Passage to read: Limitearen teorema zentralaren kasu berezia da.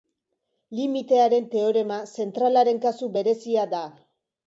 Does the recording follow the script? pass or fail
pass